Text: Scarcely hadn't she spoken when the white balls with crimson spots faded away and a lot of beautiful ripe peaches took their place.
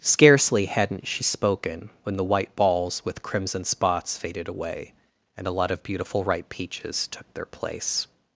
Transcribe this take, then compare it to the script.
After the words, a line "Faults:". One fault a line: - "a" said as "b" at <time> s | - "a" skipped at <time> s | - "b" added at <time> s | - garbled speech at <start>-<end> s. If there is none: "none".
Scarcely hadn't she spoken when the white balls with crimson spots faded away and a lot of beautiful ripe peaches took their place.
Faults:
none